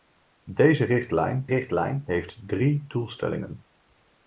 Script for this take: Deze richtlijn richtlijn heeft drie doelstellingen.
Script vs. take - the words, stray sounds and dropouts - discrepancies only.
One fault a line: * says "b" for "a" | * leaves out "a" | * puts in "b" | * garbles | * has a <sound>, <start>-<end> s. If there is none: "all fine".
all fine